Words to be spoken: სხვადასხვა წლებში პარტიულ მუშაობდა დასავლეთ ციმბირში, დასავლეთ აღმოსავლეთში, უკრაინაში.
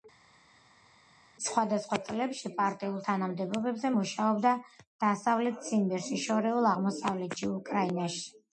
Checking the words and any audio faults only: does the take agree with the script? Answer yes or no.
no